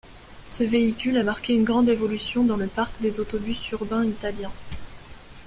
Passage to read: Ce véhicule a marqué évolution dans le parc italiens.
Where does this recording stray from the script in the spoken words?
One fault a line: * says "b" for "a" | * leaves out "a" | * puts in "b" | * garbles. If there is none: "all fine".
* puts in "une grande"
* puts in "des autobus urbains"